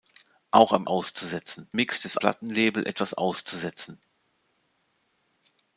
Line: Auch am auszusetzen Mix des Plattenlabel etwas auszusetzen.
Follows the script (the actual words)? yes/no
yes